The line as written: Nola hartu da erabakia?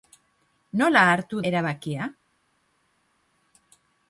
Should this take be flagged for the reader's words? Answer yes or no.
yes